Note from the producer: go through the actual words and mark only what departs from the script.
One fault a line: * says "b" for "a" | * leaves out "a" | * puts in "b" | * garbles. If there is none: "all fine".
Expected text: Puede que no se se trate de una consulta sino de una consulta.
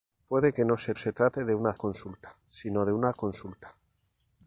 all fine